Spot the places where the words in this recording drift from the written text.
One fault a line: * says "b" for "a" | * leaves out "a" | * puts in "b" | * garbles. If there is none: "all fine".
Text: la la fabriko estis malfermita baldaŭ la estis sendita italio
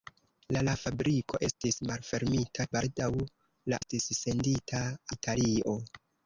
all fine